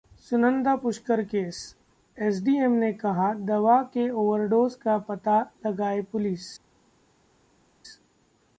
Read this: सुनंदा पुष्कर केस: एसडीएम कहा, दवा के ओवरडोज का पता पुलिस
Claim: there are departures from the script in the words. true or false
true